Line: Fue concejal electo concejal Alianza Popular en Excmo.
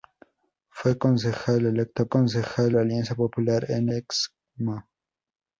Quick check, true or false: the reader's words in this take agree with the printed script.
true